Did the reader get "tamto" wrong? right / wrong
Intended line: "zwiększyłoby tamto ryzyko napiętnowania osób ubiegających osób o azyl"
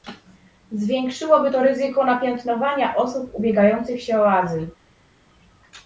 wrong